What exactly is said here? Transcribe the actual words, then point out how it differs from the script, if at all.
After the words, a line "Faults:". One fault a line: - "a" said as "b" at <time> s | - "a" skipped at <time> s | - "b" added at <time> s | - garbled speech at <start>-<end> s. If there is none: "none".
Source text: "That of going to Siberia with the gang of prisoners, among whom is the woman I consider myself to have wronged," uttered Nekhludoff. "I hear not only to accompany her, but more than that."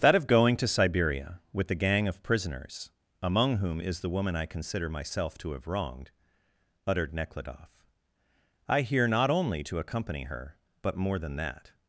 "That of going to Siberia with the gang of prisoners, among whom is the woman I consider myself to have wronged," uttered Nekhludoff. "I hear not only to accompany her, but more than that."
Faults:
none